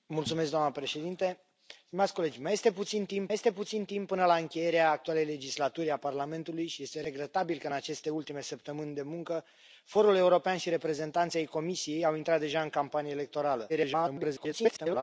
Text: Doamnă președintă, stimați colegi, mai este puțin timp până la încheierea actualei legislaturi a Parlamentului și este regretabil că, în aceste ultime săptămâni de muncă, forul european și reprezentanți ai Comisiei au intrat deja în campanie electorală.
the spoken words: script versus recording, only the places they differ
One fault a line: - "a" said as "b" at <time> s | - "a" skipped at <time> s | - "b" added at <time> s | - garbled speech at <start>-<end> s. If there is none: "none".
- "este puțin timp" added at 3.3 s
- garbled speech at 13.7-15.0 s